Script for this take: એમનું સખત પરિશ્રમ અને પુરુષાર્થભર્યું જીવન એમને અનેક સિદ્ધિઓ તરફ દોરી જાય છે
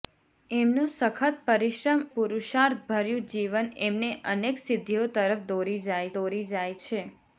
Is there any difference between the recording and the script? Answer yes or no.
yes